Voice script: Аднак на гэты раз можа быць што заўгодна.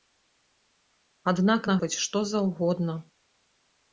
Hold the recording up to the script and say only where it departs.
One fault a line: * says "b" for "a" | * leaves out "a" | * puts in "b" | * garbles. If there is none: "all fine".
* leaves out "гэты раз можа"